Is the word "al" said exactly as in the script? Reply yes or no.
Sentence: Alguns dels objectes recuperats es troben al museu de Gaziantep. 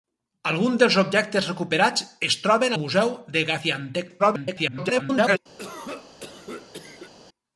no